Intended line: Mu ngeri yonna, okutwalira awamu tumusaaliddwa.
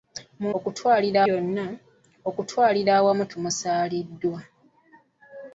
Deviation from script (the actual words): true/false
true